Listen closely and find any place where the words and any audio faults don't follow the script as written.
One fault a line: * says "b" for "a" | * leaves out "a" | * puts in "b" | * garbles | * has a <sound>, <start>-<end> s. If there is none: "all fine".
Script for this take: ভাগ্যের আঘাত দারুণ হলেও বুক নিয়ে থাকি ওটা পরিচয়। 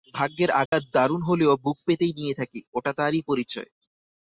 * has a dropout, 0.7-0.7 s
* puts in "পেতেই"
* puts in "তারই"